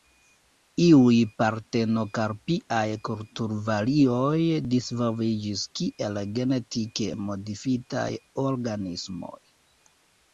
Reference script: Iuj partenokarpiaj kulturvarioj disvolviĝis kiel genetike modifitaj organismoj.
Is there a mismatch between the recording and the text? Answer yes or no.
no